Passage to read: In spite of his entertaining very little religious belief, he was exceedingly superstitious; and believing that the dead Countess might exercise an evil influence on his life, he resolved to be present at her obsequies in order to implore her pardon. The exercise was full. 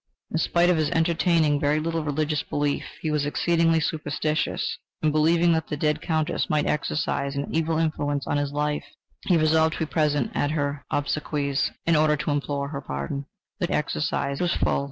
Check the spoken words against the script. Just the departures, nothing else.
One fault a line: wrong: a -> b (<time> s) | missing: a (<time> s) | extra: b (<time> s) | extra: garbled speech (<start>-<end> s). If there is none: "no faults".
no faults